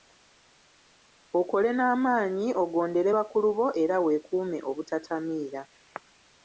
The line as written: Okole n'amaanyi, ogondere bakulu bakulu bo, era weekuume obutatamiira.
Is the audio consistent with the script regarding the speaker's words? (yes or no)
no